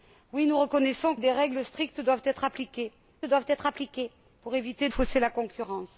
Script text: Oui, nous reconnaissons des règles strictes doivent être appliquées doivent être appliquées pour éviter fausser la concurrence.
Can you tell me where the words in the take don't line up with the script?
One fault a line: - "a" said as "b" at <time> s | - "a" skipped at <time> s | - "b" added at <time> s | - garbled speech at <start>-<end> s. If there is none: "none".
none